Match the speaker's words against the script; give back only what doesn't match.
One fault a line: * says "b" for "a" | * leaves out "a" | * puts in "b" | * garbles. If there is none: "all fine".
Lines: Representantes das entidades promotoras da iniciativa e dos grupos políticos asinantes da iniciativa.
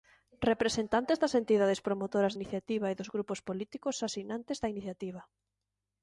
* leaves out "da"